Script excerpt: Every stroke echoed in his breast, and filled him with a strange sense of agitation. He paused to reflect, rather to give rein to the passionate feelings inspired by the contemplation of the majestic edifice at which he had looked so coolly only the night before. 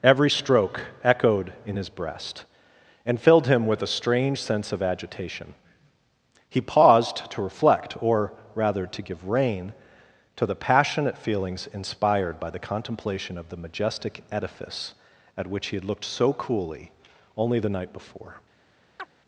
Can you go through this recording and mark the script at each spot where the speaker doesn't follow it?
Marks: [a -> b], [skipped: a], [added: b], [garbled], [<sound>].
Every stroke echoed in his breast, and filled him with a strange sense of agitation. He paused to reflect, [added: or] rather to give rein to the passionate feelings inspired by the contemplation of the majestic edifice at which he had looked so coolly only the night before. [chirp]